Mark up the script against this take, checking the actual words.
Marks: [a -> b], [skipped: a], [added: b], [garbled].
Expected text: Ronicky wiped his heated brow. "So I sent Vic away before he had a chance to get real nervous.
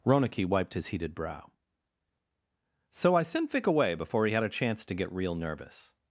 Ronicky wiped his heated brow. "So I sent Vic away before he had a chance to get real nervous.